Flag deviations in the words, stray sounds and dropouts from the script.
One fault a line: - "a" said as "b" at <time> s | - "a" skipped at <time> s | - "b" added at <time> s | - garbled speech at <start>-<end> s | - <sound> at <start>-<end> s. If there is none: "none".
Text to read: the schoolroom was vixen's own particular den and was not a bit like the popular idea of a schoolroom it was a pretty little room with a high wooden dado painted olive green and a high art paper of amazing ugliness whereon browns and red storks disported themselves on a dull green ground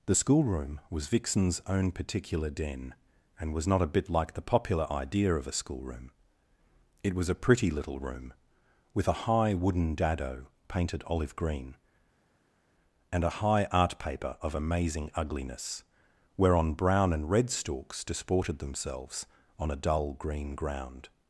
- "browns" said as "brown" at 16.7 s